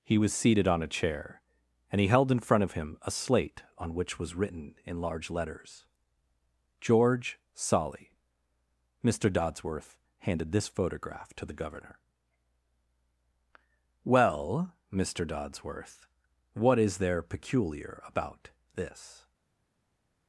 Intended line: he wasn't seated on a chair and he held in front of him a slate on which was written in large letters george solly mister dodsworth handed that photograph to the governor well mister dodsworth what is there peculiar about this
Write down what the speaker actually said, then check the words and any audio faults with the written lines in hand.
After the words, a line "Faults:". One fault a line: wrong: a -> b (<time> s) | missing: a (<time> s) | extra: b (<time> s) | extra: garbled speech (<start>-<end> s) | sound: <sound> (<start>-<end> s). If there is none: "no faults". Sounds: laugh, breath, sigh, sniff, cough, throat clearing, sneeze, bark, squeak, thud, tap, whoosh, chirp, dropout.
he was seated on a chair and he held in front of him a slate on which was written in large letters george solly mister dodsworth handed this photograph to the governor well mister dodsworth what is there peculiar about this
Faults:
wrong: wasn't -> was (0.2 s)
wrong: that -> this (10.5 s)